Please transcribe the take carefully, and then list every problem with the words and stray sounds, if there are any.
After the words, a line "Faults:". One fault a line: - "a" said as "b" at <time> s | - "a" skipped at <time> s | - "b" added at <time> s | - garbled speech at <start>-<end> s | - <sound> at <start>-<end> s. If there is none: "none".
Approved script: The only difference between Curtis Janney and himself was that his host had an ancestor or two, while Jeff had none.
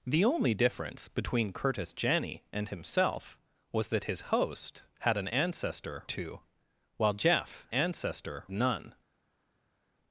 The only difference between Curtis Janney and himself was that his host had an ancestor two, while Jeff ancestor none.
Faults:
- "or" skipped at 6.0 s
- "had" said as "ancestor" at 7.7 s